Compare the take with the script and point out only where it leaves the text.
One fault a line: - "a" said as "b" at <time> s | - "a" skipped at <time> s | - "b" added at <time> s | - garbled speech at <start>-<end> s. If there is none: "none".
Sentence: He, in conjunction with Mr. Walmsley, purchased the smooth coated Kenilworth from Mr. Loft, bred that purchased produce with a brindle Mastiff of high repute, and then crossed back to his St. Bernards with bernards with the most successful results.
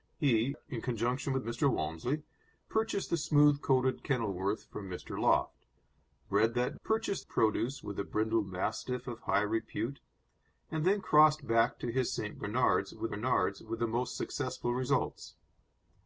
none